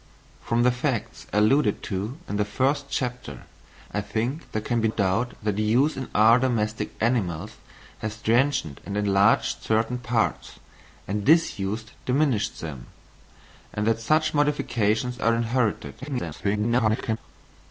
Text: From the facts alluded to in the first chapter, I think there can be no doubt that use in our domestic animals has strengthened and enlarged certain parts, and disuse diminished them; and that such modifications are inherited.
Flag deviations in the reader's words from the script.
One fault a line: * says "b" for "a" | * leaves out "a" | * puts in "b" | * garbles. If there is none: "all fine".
* leaves out "no"
* garbles